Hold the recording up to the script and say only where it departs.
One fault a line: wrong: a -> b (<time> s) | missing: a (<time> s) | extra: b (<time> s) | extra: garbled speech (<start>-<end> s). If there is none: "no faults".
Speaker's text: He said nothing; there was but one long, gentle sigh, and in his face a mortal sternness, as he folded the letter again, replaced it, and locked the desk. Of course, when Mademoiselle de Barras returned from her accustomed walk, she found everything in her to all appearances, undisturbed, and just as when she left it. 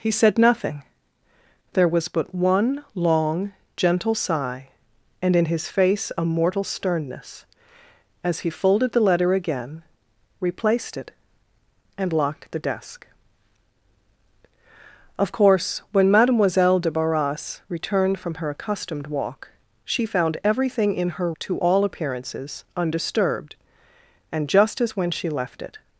no faults